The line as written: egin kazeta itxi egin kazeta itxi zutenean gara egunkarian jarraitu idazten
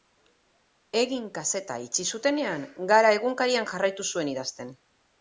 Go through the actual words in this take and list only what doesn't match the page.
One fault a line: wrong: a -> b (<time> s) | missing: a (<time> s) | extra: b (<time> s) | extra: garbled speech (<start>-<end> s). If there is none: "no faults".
missing: egin kazeta itxi (2.1 s)
extra: zuen (4.1 s)